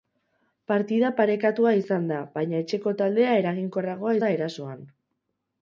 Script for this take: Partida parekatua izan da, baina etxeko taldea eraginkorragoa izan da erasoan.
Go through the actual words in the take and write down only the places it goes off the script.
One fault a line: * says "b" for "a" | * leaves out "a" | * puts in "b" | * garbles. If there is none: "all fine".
* leaves out "izan"